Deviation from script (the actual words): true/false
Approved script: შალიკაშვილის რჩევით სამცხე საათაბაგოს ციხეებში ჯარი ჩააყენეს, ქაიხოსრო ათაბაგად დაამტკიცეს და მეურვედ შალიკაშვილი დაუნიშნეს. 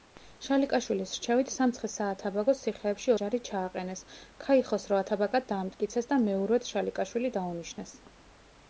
false